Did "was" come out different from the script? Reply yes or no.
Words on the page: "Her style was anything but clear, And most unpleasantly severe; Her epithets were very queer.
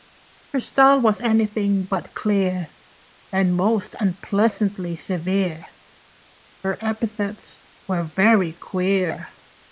no